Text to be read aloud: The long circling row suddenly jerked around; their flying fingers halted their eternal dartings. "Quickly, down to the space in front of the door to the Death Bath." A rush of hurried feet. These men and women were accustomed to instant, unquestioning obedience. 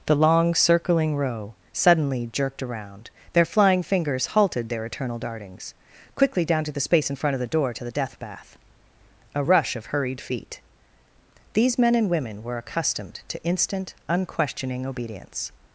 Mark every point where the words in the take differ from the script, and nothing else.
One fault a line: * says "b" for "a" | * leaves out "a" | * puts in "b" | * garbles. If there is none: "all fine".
all fine